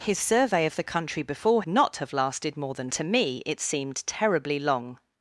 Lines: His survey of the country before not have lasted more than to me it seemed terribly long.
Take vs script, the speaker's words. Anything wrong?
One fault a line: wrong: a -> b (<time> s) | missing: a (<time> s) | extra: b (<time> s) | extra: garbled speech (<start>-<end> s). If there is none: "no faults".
no faults